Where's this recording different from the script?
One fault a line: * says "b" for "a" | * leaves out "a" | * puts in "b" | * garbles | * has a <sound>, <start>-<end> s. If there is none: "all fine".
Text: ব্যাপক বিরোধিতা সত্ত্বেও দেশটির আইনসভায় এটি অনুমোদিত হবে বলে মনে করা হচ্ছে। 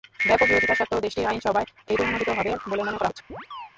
* has a chirp, 3.3-3.7 s